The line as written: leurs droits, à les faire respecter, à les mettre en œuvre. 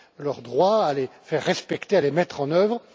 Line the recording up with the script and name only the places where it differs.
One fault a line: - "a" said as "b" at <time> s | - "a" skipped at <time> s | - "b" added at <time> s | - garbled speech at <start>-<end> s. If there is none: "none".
none